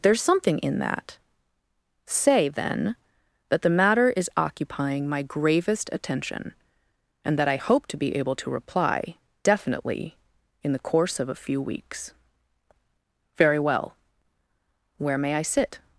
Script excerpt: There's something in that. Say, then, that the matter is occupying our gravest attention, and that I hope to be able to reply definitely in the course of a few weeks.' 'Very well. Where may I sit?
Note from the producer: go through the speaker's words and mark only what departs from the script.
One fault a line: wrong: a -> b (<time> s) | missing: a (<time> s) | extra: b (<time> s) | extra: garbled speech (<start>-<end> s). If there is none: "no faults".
wrong: our -> my (5.1 s)